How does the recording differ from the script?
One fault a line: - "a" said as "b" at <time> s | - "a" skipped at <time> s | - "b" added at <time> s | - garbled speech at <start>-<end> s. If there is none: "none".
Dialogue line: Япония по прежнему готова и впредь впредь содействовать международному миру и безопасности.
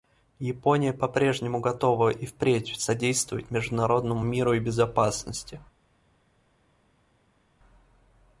- "впредь" skipped at 2.8 s